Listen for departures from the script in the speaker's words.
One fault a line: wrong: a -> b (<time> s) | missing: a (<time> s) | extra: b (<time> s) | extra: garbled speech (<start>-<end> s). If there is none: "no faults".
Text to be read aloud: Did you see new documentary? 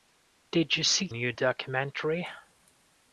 no faults